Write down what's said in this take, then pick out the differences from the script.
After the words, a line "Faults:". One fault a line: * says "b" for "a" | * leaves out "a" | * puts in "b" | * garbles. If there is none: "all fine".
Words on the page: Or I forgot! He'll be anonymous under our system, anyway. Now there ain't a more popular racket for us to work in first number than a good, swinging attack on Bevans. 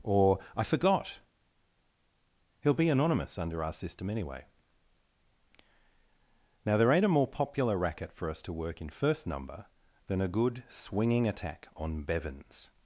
Or I forgot! He'll be anonymous under our system, anyway. Now there ain't a more popular racket for us to work in first number than a good, swinging attack on Bevans.
Faults:
all fine